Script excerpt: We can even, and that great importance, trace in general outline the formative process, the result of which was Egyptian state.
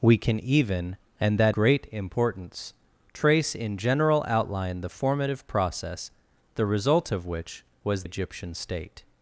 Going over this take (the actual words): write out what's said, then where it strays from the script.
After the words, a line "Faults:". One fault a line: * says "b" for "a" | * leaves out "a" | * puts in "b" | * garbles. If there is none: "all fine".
We can even, and that great importance, trace in general outline the formative process, the result of which was Egyptian state.
Faults:
all fine